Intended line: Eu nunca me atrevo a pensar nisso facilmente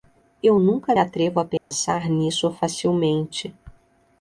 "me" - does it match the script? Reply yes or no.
no